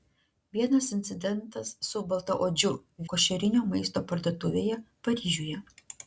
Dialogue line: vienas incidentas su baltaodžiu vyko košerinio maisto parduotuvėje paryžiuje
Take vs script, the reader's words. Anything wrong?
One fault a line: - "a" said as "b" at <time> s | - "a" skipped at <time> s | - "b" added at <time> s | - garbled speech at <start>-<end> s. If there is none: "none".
- "vyko" skipped at 2.7 s